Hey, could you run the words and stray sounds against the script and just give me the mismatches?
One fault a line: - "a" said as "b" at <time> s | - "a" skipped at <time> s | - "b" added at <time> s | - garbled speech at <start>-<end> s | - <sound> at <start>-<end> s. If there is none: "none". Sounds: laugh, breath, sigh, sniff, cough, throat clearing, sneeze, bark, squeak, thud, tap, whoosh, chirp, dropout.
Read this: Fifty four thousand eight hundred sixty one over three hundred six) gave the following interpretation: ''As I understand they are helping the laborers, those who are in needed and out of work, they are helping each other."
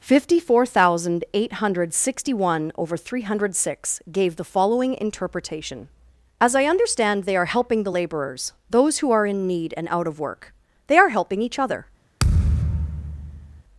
- "needed" said as "need" at 9.5 s
- thud at 12.2-13.6 s